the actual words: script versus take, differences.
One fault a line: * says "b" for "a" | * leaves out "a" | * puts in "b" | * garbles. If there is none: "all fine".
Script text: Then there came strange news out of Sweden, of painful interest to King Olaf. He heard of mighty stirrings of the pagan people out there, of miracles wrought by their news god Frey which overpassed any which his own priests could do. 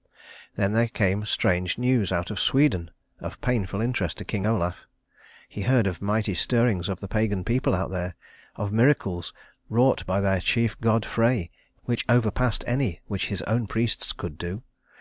* says "chief" for "news"